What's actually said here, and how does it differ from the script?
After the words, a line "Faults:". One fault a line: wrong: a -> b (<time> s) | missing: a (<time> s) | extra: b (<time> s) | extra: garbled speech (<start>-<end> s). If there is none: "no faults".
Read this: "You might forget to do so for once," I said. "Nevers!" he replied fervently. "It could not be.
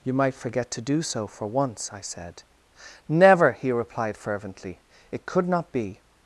"You might forget to do so for once," I said. "Never!" he replied fervently. "It could not be.
Faults:
wrong: Nevers -> Never (3.1 s)